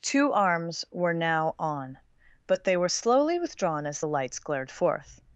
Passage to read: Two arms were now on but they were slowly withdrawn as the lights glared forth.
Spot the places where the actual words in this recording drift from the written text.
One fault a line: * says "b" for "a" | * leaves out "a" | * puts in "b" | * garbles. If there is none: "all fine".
all fine